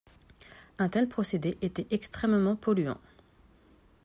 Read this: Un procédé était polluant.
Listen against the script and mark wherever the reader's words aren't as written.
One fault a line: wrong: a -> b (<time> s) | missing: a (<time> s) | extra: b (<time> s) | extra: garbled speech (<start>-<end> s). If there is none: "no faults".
extra: tel (0.9 s)
extra: extrêmement (1.9 s)